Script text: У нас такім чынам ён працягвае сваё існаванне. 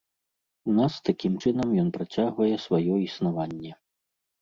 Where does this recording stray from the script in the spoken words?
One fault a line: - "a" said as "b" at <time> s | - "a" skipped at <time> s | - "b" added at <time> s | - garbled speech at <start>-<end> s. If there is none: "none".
none